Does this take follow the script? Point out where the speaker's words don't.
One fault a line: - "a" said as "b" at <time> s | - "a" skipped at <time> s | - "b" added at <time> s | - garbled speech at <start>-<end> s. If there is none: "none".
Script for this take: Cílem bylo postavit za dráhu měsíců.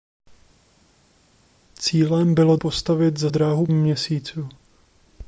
none